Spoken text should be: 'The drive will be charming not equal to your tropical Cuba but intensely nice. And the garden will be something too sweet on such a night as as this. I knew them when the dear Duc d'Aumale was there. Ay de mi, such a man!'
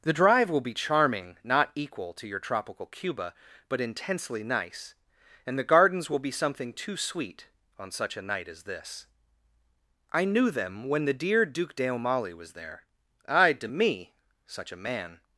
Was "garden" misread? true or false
true